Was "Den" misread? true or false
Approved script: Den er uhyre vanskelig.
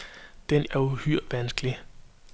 false